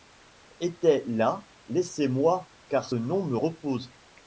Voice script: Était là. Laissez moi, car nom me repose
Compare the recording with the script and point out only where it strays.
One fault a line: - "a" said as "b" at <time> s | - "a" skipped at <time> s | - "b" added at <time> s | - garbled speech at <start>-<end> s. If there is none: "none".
none